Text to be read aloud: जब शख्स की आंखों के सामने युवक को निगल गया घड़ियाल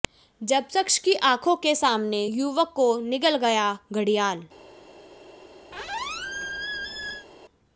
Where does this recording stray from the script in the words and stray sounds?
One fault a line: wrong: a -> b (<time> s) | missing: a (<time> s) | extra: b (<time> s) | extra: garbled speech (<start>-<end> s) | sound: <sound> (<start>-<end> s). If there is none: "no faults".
sound: squeak (5.7-7.3 s)